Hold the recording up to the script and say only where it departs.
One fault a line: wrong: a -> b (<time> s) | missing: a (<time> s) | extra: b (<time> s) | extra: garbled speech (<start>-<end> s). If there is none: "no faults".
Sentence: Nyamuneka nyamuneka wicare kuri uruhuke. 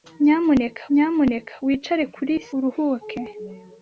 no faults